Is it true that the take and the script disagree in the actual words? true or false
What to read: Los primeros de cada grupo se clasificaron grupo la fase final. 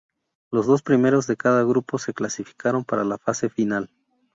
true